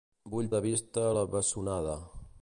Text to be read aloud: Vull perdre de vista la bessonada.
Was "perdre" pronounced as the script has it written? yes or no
no